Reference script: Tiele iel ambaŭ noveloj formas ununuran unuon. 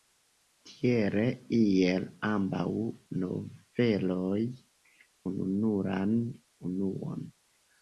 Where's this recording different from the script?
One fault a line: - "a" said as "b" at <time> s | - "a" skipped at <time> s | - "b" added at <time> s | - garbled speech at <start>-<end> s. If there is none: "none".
- "formas" skipped at 4.4 s